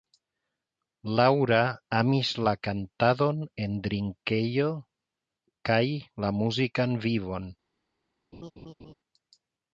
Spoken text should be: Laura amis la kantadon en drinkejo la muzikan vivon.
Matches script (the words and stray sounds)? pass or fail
fail